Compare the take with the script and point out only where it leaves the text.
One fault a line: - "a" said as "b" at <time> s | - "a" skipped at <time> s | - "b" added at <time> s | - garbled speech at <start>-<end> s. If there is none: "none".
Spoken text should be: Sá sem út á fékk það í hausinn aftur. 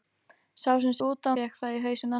none